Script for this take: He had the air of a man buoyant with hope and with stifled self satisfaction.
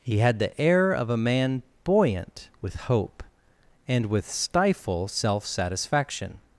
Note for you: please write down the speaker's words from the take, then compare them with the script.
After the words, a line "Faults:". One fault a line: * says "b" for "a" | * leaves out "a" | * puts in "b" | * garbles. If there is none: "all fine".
He had the air of a man buoyant with hope and with stifle self satisfaction.
Faults:
* says "stifle" for "stifled"